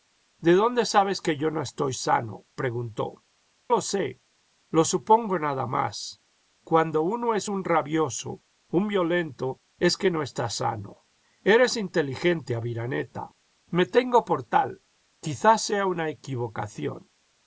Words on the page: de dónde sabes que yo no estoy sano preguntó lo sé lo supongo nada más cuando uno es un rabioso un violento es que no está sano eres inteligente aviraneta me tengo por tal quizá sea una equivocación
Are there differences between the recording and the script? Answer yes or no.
no